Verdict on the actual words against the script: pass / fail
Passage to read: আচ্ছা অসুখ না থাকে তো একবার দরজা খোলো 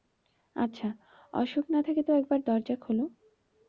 pass